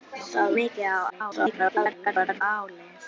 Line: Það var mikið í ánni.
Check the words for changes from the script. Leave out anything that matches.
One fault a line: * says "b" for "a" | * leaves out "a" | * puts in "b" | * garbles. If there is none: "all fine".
* leaves out "var"
* garbles